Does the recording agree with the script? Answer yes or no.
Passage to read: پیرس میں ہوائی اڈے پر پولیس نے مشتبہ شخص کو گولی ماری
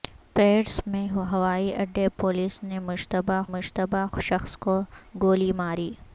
no